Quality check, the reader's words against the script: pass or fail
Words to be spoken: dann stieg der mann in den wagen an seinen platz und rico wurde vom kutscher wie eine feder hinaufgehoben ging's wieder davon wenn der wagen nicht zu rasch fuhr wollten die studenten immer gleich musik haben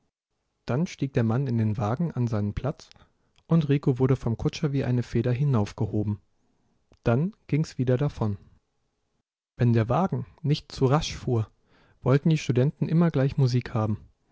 fail